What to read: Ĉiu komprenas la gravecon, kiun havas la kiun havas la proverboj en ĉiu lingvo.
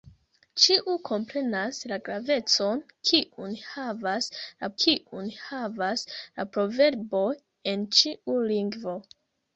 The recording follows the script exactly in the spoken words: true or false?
true